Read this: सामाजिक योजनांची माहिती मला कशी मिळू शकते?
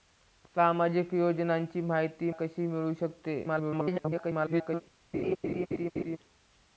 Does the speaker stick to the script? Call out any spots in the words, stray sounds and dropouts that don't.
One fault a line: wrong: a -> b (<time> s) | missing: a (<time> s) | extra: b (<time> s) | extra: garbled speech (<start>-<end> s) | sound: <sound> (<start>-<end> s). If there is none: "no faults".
missing: मला (2.3 s)
extra: garbled speech (3.4-4.8 s)
sound: laugh (5.1-6.2 s)